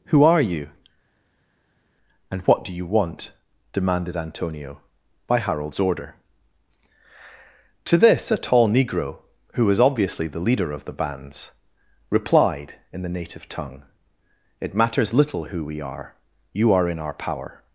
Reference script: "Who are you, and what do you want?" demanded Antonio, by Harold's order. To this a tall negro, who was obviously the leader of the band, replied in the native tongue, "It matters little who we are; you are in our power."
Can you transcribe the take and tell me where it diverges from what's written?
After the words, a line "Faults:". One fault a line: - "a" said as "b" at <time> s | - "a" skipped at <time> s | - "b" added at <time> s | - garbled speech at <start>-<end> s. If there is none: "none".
"Who are you, and what do you want?" demanded Antonio, by Harold's order. To this a tall negro, who was obviously the leader of the bands, replied in the native tongue, "It matters little who we are; you are in our power."
Faults:
- "band" said as "bands" at 10.9 s